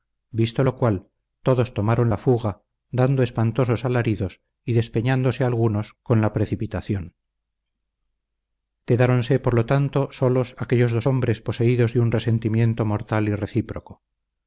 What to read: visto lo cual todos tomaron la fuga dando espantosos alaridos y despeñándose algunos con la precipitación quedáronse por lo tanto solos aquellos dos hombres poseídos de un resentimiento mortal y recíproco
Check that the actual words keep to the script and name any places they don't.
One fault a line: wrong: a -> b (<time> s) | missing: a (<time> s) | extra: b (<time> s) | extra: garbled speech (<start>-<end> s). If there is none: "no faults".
no faults